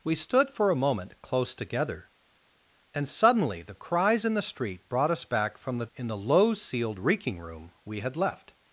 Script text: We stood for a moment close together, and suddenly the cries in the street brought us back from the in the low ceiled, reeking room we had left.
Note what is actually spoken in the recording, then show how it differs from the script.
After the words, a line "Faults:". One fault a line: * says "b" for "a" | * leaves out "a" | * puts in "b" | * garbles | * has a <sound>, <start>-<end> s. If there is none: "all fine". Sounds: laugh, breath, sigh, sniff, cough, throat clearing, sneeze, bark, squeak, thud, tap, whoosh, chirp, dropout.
We stood for a moment close together, and suddenly the cries in the street brought us back from the in the low ceiled, reeking room we had left.
Faults:
all fine